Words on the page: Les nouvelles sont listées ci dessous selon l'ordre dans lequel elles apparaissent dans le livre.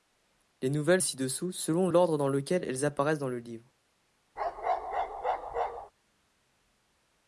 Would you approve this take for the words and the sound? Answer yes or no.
no